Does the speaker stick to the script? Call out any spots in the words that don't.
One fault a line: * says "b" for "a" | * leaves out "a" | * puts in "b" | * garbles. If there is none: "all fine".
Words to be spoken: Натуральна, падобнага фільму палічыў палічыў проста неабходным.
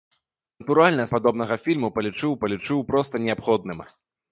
all fine